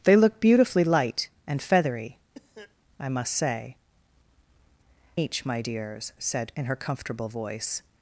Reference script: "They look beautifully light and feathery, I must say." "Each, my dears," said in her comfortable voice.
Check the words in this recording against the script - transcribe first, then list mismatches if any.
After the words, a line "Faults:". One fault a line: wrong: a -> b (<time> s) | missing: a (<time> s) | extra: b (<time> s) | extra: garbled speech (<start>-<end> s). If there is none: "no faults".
"They look beautifully light and feathery, I must say." "Each, my dears," said in her comfortable voice.
Faults:
no faults